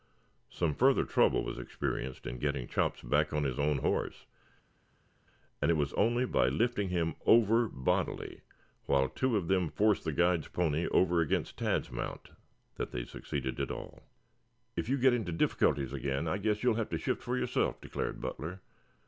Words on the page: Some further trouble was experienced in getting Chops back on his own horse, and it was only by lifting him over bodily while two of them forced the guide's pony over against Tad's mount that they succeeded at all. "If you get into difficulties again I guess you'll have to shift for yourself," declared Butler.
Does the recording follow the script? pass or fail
pass